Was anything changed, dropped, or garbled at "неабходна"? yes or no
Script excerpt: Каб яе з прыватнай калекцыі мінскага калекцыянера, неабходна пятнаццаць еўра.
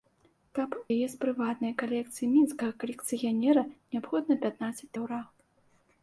no